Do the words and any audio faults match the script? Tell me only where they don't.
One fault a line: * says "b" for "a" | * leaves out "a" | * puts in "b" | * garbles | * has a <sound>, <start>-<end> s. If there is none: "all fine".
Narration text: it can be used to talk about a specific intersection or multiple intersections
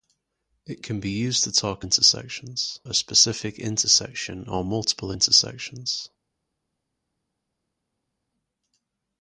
* says "intersections" for "about"